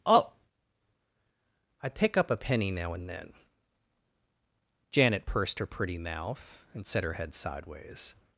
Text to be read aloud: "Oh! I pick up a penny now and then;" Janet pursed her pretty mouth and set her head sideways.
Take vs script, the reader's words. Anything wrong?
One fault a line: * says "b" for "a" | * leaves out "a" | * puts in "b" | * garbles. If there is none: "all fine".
all fine